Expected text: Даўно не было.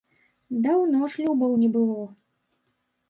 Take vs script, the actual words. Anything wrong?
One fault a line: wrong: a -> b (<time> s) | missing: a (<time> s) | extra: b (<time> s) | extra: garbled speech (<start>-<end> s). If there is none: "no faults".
extra: шлюбаў (1.1 s)